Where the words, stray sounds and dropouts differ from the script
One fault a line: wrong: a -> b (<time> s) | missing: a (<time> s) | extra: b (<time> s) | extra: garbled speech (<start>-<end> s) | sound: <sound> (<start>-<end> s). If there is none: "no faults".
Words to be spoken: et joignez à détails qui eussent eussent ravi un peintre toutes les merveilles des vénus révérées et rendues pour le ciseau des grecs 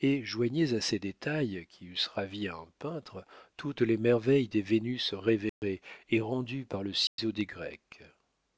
extra: ces (0.8 s)
missing: eussent (2.1 s)
sound: dropout (5.5-5.6 s)
wrong: pour -> par (6.7 s)
sound: dropout (7.1-7.2 s)